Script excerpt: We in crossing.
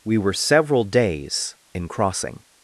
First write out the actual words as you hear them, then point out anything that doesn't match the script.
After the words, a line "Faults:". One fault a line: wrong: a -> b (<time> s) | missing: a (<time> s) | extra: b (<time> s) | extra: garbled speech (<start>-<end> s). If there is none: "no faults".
We were several days in crossing.
Faults:
extra: were several days (0.2 s)